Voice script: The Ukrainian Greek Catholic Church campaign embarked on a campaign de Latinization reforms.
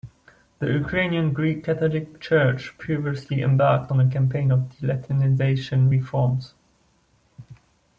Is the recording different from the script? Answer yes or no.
yes